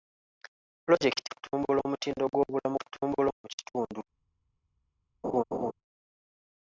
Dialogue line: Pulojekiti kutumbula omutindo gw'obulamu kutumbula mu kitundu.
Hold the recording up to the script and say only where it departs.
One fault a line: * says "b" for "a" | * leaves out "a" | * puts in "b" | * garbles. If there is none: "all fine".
all fine